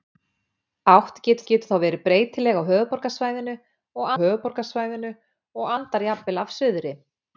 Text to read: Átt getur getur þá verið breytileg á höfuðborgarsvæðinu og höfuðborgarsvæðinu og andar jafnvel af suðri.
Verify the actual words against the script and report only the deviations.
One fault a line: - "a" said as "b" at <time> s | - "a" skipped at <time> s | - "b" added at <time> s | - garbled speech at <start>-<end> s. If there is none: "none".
none